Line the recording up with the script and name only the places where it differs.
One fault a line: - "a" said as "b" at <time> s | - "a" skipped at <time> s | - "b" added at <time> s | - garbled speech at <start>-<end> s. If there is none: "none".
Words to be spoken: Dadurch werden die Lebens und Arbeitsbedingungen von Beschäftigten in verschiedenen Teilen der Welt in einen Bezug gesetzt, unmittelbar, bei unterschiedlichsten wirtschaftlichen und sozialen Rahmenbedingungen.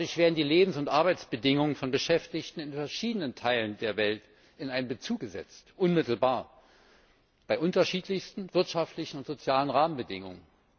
none